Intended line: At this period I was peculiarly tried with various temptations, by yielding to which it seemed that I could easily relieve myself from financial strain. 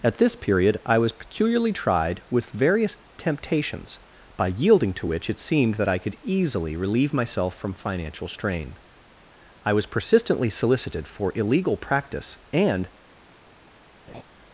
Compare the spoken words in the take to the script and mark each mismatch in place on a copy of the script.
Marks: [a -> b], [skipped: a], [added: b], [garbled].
At this period I was peculiarly tried with various temptations, by yielding to which it seemed that I could easily relieve myself from financial strain. [added: I was persistently solicited for illegal practice and]